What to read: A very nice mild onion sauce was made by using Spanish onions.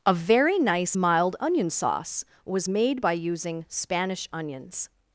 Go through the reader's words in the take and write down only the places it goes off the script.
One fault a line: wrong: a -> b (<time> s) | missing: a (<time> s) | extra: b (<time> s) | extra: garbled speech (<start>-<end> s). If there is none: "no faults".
no faults